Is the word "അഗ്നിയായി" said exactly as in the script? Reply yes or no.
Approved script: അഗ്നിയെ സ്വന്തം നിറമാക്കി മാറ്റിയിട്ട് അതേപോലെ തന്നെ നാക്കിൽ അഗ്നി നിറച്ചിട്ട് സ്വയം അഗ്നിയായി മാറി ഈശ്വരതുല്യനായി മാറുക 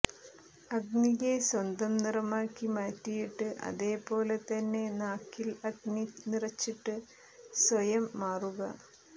no